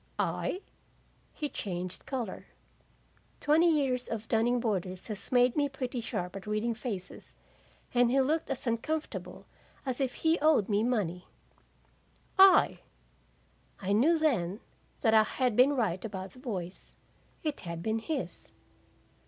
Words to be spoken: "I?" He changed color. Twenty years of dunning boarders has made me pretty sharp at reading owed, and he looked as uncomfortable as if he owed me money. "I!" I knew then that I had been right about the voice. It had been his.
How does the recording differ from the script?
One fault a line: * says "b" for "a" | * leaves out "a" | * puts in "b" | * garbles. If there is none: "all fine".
* says "faces" for "owed"